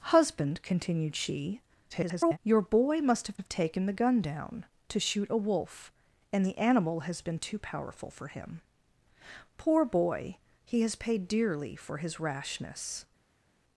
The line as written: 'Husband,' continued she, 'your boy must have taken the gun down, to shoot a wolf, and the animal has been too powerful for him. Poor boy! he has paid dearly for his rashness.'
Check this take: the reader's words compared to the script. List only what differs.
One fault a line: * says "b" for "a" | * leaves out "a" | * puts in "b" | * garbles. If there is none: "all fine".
* garbles
* puts in "have"